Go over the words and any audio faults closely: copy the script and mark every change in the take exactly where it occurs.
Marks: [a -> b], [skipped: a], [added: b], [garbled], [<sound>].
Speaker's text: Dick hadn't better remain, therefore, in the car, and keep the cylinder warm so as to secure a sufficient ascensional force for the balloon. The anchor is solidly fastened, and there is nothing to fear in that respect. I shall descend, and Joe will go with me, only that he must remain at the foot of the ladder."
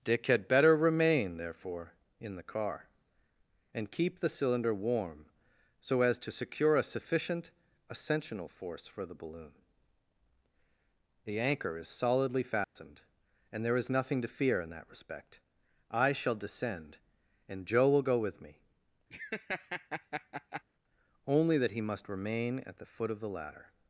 Dick [hadn't -> had] better remain, therefore, in the car, and keep the cylinder warm so as to secure a sufficient ascensional force for the balloon. The anchor is solidly fastened, [dropout] and there is nothing to fear in that respect. I shall descend, and Joe will go with me, [laugh] only that he must remain at the foot of the ladder."